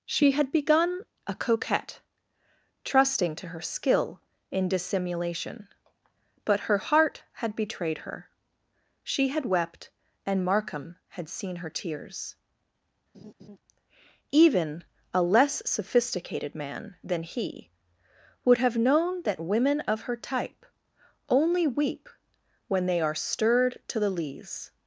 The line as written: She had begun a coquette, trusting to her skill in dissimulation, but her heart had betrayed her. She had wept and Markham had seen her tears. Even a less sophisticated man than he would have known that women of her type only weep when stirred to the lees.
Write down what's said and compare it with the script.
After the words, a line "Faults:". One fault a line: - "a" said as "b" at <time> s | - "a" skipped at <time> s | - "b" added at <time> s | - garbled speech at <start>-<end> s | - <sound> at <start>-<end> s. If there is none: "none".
She had begun a coquette, trusting to her skill in dissimulation, but her heart had betrayed her. She had wept and Markham had seen her tears. Even a less sophisticated man than he would have known that women of her type only weep when they are stirred to the lees.
Faults:
- laugh at 13.1-13.6 s
- "they are" added at 22.9 s